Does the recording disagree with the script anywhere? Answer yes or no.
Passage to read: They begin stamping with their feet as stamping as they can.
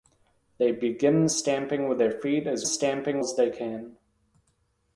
no